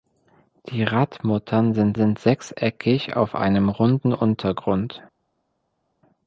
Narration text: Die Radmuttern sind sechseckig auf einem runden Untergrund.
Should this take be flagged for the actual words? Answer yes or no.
yes